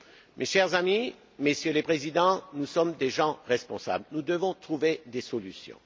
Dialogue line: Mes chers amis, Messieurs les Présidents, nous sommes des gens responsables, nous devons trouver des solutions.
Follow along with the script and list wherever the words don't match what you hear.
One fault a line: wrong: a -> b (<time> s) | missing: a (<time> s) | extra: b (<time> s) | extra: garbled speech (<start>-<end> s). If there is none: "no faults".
no faults